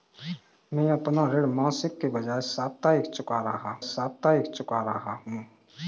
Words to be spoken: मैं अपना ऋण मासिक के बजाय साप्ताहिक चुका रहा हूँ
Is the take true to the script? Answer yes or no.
no